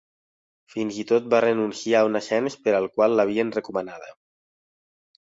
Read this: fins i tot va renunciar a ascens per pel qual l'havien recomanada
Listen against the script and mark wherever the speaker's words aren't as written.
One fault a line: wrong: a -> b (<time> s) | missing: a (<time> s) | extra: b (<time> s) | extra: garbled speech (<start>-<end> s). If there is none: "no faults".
extra: un (2.1 s)
wrong: pel -> al (2.8 s)